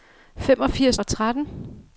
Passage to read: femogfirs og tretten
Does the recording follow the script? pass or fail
pass